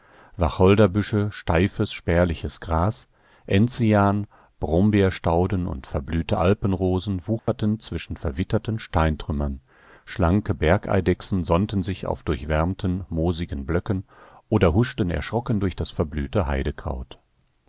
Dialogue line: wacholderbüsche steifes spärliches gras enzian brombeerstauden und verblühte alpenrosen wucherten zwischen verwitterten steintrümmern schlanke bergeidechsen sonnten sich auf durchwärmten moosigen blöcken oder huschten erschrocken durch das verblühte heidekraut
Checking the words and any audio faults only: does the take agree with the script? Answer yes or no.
no